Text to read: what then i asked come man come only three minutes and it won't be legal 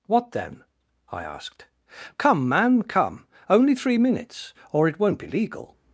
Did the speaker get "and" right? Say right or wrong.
wrong